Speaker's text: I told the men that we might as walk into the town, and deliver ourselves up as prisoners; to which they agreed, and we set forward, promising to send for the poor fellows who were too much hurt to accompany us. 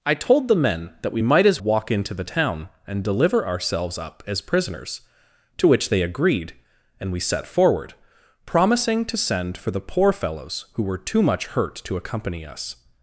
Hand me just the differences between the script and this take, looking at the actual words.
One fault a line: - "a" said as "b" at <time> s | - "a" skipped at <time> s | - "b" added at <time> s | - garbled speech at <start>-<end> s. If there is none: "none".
none